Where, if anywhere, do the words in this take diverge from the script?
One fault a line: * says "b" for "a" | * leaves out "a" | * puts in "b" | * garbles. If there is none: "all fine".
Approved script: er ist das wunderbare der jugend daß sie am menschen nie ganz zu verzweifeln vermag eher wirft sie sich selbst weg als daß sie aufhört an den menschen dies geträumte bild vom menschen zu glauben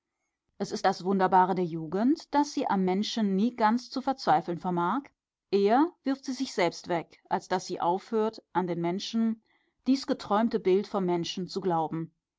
* says "es" for "er"